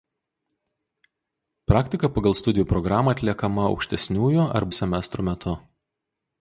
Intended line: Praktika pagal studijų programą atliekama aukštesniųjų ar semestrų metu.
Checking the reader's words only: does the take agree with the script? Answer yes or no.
yes